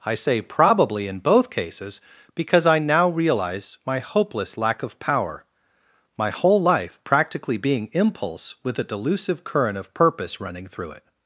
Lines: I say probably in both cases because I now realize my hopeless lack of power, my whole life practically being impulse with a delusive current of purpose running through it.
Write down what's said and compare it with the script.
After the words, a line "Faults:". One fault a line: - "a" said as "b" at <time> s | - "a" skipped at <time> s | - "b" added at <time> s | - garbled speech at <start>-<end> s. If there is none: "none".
I say probably in both cases because I now realize my hopeless lack of power, my whole life practically being impulse with a delusive current of purpose running through it.
Faults:
none